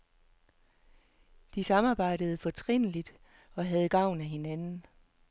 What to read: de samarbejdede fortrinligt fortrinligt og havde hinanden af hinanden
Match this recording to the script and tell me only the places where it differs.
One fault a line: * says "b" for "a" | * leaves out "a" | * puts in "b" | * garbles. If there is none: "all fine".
* leaves out "fortrinligt"
* says "gavn" for "hinanden"